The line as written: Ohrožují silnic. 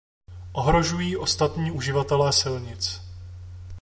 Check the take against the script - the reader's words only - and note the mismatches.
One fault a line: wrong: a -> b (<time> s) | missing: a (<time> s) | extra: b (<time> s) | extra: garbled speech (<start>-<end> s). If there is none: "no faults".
extra: ostatní uživatele (1.2 s)